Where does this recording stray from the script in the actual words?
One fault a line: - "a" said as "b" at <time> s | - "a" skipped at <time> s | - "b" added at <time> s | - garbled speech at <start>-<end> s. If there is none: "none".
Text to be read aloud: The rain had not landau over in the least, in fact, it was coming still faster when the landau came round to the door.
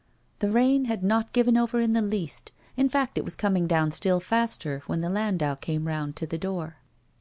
- "landau" said as "given" at 1.3 s
- "down" added at 3.6 s